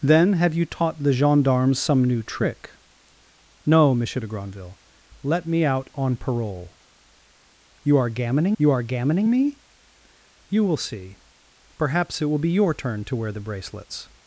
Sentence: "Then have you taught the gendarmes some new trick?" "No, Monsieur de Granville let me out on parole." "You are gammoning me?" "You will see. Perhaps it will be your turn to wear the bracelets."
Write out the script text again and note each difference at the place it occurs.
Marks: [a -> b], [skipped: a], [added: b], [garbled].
"Then have you taught the gendarmes some new trick?" "No, Monsieur de Granville let me out on parole." "You are gammoning [added: you are gammoning] me?" "You will see. Perhaps it will be your turn to wear the bracelets."